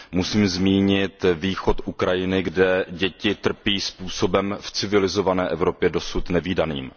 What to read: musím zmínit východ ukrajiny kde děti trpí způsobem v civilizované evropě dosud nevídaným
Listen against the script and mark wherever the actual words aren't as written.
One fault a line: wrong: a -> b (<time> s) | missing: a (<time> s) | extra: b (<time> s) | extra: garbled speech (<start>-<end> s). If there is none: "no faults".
no faults